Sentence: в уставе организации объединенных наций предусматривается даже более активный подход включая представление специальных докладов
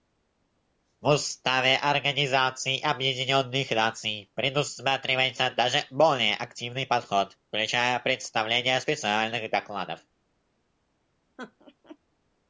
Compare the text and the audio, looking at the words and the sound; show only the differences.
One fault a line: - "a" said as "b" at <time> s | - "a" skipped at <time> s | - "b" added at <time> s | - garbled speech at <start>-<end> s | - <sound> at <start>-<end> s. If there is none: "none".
- laugh at 11.4-12.0 s